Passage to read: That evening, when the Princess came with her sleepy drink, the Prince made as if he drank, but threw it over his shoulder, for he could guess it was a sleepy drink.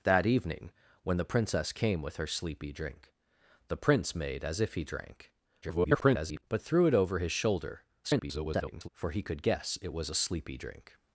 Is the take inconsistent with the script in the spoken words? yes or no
yes